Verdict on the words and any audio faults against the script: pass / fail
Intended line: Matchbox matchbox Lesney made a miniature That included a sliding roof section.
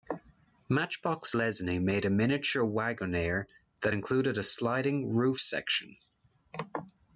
fail